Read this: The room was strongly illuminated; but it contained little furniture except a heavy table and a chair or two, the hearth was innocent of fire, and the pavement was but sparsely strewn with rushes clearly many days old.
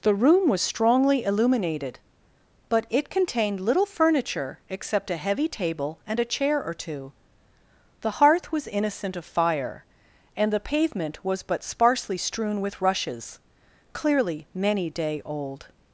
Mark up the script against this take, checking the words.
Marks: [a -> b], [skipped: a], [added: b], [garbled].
The room was strongly illuminated; but it contained little furniture except a heavy table and a chair or two, the hearth was innocent of fire, and the pavement was but sparsely strewn with rushes clearly many [days -> day] old.